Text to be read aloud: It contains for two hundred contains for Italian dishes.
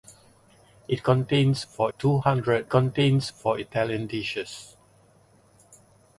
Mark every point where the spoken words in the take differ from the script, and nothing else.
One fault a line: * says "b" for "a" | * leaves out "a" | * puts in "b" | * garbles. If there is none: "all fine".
all fine